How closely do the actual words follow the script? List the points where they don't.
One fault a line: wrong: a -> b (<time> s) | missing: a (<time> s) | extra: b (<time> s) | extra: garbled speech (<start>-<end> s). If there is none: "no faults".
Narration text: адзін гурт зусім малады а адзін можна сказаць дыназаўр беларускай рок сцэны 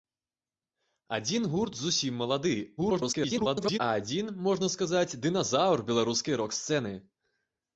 extra: garbled speech (2.8-3.8 s)